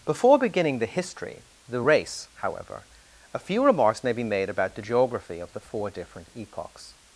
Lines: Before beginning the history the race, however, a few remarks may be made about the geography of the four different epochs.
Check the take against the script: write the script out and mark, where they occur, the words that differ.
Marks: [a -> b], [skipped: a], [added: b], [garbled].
Before beginning the history the race, however, a few remarks may be made about the geography of the four different epochs.